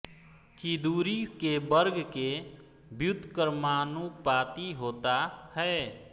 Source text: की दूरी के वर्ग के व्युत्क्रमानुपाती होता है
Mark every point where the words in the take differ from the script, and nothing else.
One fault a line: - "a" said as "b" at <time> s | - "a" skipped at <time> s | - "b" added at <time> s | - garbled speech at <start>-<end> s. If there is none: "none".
none